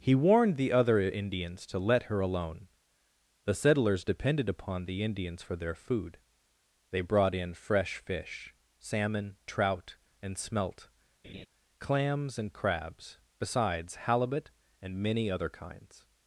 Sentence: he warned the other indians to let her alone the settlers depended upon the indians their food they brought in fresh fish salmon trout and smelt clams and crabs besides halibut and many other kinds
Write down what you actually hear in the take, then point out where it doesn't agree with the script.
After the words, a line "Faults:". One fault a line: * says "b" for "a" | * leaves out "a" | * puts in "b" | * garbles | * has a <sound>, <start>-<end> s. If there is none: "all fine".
he warned the other indians to let her alone the settlers depended upon the indians for their food they brought in fresh fish salmon trout and smelt clams and crabs besides halibut and many other kinds
Faults:
* puts in "for"
* has a laugh, 11.2-11.5 s